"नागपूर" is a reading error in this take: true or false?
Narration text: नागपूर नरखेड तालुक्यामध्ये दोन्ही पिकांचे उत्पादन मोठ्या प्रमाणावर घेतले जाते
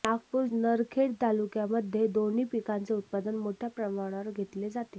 false